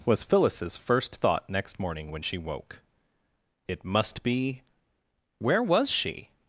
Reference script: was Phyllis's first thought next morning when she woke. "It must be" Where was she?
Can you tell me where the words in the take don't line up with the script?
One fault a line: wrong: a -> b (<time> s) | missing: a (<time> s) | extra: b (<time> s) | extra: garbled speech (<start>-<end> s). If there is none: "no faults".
no faults